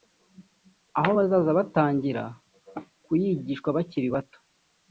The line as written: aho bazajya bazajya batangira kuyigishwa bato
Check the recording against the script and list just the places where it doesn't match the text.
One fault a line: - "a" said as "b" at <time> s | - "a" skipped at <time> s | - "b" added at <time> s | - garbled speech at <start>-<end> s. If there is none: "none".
- "bazajya" skipped at 1.6 s
- "bakiri" added at 3.8 s